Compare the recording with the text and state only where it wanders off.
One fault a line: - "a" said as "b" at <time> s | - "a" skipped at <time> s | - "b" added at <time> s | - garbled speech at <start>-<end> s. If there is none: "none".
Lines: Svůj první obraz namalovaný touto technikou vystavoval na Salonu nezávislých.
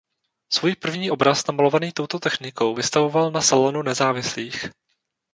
none